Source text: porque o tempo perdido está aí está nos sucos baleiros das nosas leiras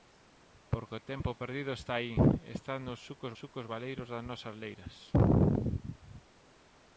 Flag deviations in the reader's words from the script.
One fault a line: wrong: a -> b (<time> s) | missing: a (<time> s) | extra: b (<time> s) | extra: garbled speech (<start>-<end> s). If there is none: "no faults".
extra: sucos (3.4 s)